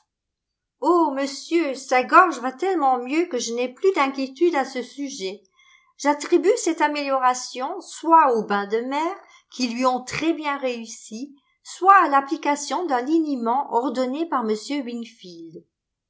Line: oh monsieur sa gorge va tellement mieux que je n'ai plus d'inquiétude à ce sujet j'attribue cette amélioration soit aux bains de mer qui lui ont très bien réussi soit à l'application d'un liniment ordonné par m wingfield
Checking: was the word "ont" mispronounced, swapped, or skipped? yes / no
no